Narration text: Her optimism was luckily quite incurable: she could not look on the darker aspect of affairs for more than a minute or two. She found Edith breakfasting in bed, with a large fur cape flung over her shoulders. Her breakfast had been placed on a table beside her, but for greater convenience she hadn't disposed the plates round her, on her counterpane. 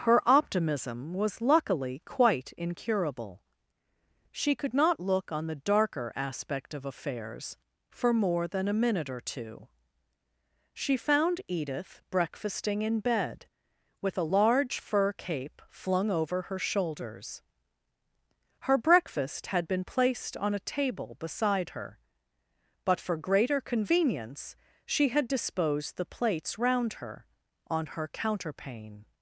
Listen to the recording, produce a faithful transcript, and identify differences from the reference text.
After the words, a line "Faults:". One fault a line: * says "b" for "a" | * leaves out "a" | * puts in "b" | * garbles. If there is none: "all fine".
Her optimism was luckily quite incurable: she could not look on the darker aspect of affairs for more than a minute or two. She found Edith breakfasting in bed, with a large fur cape flung over her shoulders. Her breakfast had been placed on a table beside her, but for greater convenience she had disposed the plates round her, on her counterpane.
Faults:
* says "had" for "hadn't"